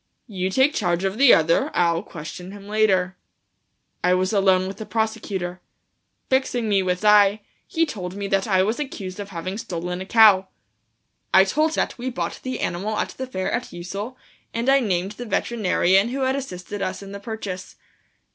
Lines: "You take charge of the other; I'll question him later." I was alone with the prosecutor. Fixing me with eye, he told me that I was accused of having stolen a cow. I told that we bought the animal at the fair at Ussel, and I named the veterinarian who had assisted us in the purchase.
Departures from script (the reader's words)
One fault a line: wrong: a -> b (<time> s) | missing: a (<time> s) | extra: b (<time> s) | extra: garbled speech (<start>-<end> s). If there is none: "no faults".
no faults